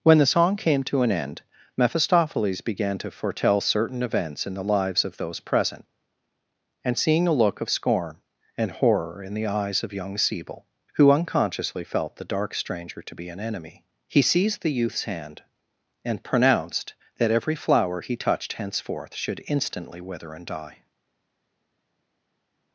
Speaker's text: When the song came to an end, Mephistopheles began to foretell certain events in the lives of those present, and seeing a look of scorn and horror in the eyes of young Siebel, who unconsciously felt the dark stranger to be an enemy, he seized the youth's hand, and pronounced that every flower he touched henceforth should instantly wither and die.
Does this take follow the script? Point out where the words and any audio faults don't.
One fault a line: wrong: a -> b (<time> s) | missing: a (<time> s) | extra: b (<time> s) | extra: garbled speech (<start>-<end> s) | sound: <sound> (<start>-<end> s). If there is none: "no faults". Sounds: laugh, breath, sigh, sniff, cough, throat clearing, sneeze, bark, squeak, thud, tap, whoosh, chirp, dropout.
no faults